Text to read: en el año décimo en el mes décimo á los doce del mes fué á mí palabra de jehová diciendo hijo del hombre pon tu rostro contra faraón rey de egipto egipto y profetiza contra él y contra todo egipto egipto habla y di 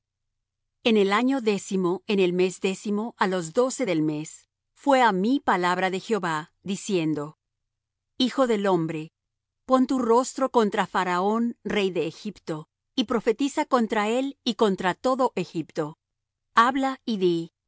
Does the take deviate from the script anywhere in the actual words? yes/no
yes